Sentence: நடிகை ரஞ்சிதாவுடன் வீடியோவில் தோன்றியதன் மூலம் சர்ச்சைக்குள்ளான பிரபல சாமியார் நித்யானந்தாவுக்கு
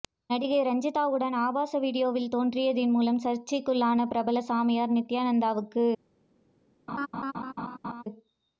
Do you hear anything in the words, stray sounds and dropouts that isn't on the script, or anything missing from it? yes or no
yes